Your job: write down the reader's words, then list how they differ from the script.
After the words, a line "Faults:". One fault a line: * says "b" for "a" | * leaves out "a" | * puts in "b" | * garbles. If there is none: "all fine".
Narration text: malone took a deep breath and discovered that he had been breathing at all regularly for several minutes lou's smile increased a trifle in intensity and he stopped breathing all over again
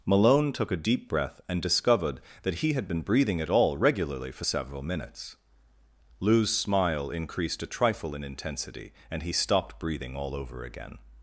malone took a deep breath and discovered that he had been breathing at all regularly for several minutes lou's smile increased a trifle in intensity and he stopped breathing all over again
Faults:
all fine